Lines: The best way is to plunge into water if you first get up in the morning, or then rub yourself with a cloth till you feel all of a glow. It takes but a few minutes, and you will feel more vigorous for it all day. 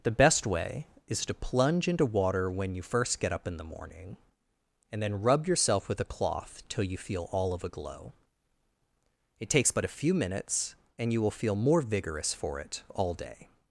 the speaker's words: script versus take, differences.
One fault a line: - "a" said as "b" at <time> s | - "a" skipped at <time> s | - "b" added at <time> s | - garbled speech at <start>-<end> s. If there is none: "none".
- "if" said as "when" at 2.5 s
- "or" said as "and" at 4.9 s